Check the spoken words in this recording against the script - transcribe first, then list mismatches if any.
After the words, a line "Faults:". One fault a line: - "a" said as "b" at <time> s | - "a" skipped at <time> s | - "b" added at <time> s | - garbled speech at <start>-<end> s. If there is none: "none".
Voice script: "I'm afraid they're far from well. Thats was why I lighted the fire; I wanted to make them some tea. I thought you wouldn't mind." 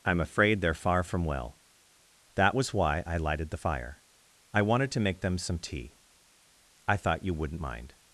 "I'm afraid they're far from well. That was why I lighted the fire; I wanted to make them some tea. I thought you wouldn't mind."
Faults:
- "Thats" said as "That" at 2.4 s